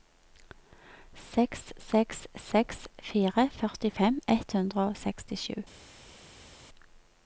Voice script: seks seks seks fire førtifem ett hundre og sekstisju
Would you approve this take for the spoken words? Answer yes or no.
yes